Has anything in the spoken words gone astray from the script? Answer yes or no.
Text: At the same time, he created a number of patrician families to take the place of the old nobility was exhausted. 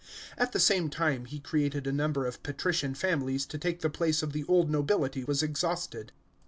no